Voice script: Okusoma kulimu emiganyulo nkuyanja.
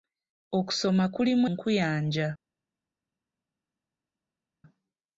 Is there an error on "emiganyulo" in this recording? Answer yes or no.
yes